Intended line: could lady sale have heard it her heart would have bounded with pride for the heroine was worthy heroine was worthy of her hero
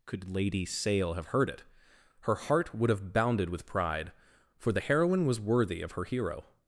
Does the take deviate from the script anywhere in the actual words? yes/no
yes